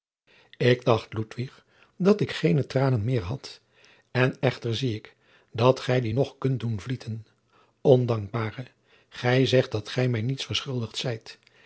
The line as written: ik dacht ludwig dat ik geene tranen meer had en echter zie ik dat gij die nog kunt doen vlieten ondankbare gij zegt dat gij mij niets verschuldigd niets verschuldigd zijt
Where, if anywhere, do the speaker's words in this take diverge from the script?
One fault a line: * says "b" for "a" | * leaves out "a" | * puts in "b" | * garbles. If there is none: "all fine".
* leaves out "niets verschuldigd"